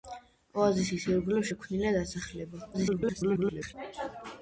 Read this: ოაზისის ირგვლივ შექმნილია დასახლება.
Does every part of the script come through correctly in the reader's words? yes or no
no